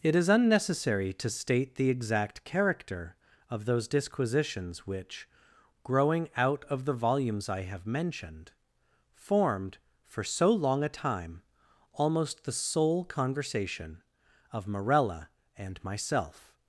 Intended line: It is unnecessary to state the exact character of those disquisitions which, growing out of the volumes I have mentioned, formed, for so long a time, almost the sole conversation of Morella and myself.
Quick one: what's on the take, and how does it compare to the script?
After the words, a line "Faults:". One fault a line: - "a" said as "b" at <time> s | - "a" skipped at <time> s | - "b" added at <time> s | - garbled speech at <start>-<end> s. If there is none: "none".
It is unnecessary to state the exact character of those disquisitions which, growing out of the volumes I have mentioned, formed, for so long a time, almost the sole conversation of Morella and myself.
Faults:
none